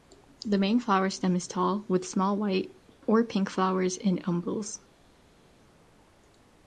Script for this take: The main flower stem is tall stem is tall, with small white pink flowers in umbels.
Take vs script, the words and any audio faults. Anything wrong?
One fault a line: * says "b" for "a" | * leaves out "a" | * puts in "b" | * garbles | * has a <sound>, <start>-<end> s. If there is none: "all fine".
* leaves out "stem is tall"
* puts in "or"